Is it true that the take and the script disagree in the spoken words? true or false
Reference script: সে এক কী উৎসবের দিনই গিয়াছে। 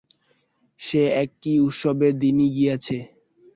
false